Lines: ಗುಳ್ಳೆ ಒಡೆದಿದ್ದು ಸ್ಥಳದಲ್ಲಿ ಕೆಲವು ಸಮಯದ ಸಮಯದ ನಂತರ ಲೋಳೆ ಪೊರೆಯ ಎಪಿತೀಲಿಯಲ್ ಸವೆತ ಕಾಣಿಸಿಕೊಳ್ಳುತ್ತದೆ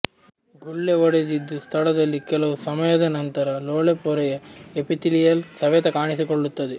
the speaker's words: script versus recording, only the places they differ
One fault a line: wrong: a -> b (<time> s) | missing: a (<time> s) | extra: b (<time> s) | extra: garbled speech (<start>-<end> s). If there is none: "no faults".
missing: ಸಮಯದ (3.1 s)